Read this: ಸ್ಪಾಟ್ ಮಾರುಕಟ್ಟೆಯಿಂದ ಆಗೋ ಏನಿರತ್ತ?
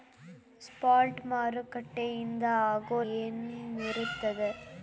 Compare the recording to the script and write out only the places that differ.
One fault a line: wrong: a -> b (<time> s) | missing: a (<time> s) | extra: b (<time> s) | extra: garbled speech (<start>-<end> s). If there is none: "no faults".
no faults